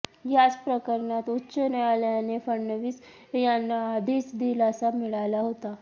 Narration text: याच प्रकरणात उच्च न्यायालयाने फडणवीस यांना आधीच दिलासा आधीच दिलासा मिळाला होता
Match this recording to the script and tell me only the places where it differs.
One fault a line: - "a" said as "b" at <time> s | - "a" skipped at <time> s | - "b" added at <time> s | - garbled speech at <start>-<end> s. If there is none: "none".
- "आधीच दिलासा" skipped at 4.9 s